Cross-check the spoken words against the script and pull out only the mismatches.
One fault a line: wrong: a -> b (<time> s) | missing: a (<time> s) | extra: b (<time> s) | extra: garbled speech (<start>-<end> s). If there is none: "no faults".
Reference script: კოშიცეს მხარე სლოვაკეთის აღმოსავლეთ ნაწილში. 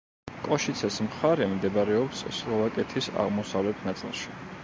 extra: მდებარეობს (1.5 s)